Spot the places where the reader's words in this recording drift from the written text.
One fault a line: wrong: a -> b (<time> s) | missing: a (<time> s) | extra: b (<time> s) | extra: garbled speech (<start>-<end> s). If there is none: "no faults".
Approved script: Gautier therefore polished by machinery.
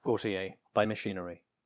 missing: therefore polished (0.6 s)